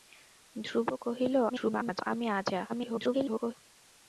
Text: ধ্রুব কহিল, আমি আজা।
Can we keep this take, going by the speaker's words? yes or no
no